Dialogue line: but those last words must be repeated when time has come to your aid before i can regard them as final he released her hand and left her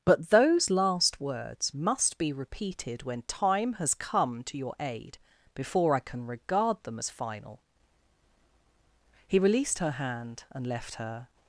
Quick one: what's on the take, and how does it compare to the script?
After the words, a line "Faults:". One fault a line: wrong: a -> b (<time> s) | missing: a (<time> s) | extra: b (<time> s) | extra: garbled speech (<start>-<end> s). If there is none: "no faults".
but those last words must be repeated when time has come to your aid before i can regard them as final he released her hand and left her
Faults:
no faults